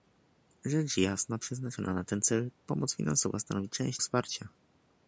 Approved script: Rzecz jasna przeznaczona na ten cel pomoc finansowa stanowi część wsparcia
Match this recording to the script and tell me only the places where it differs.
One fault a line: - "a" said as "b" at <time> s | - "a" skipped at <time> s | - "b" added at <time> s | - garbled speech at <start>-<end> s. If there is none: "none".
none